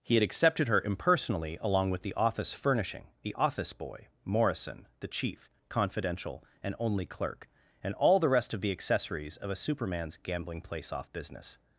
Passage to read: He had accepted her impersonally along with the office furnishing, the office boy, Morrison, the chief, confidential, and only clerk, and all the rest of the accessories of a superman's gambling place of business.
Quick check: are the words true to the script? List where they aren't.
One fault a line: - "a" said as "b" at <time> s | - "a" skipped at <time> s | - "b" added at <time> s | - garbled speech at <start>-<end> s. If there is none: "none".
- "of" said as "off" at 10.9 s